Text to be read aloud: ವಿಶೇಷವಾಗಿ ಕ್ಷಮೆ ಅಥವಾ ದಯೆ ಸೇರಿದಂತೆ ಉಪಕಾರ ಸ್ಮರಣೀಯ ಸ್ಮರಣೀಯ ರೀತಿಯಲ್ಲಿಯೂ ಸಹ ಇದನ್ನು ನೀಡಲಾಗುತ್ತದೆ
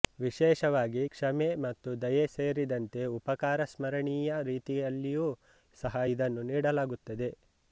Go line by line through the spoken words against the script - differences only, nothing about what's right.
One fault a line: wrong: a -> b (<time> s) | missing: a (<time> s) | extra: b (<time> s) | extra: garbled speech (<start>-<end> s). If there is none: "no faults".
wrong: ಅಥವಾ -> ಮತ್ತು (1.6 s)
missing: ಸ್ಮರಣೀಯ (4.4 s)